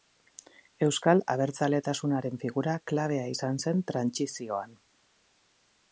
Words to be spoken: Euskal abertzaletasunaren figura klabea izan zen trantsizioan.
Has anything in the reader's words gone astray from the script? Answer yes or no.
no